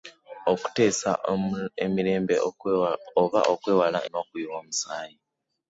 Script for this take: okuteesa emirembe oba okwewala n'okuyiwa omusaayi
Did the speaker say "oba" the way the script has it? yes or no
yes